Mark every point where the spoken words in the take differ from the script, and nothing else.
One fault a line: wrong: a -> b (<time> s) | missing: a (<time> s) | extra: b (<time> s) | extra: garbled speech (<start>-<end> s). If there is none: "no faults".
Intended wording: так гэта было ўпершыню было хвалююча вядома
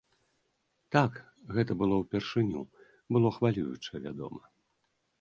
no faults